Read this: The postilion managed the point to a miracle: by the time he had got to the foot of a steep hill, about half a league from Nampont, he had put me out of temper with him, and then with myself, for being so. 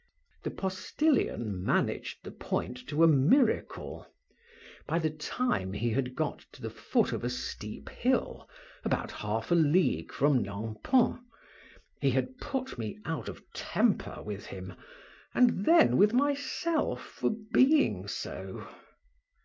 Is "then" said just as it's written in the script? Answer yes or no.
yes